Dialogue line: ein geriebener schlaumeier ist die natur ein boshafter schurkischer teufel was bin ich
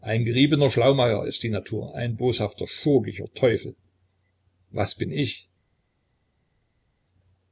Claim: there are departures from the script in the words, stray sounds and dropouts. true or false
false